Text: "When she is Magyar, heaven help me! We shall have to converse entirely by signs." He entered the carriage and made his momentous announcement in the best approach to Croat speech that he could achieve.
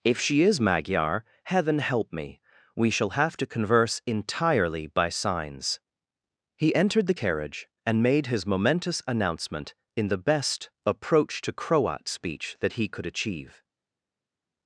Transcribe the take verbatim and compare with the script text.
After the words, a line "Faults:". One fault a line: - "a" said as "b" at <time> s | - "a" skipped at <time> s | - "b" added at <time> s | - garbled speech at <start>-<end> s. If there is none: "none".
"If she is Magyar, heaven help me! We shall have to converse entirely by signs." He entered the carriage and made his momentous announcement in the best approach to Croat speech that he could achieve.
Faults:
- "When" said as "If" at 0.0 s